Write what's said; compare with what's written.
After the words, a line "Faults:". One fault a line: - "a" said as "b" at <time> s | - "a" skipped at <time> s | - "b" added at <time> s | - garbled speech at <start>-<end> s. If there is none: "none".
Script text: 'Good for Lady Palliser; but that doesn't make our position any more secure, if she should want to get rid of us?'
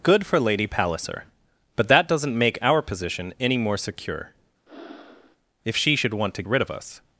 'Good for Lady Palliser; but that doesn't make our position any more secure, if she should want to rid of us?'
Faults:
- "get" skipped at 6.4 s